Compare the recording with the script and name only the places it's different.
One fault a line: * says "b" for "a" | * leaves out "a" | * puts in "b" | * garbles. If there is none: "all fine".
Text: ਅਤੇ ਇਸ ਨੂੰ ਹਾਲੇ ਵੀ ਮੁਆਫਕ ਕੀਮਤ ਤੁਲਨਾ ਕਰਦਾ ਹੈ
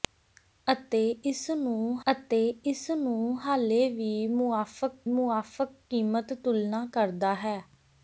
* puts in "ਅਤੇ ਇਸ ਨੂੰ"
* puts in "ਮੁਆਫਕ"